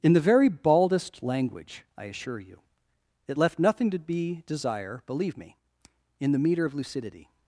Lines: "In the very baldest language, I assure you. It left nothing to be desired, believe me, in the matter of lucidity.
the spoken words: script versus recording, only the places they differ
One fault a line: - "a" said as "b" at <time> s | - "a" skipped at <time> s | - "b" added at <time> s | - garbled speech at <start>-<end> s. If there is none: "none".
- "desired" said as "desire" at 4.5 s
- "matter" said as "meter" at 6.4 s